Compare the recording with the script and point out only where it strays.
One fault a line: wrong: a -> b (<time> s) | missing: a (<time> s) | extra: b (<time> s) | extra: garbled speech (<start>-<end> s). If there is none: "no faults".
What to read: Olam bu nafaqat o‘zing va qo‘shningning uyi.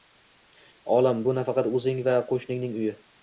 no faults